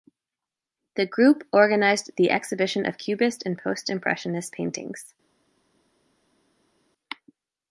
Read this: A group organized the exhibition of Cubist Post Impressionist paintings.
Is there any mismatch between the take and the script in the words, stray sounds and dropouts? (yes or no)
yes